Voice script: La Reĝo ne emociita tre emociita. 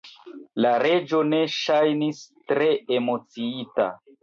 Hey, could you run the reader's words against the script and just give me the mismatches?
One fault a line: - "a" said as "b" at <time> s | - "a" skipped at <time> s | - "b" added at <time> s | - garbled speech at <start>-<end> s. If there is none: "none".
- "emociita" said as "ŝajnis" at 1.6 s